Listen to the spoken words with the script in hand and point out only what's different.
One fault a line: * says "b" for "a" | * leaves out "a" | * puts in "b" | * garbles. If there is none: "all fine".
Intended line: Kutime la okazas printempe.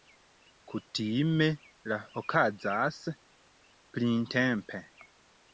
all fine